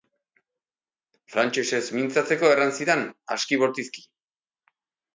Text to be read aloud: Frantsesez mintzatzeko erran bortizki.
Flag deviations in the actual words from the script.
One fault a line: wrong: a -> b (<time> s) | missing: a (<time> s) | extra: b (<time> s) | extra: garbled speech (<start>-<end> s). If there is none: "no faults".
extra: zidan aski (2.8 s)